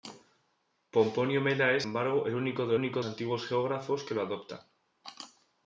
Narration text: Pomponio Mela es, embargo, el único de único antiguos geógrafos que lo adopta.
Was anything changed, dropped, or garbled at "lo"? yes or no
no